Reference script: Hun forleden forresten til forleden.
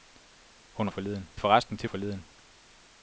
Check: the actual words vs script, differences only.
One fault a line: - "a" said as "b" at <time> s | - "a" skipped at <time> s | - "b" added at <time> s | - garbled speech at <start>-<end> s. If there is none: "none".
none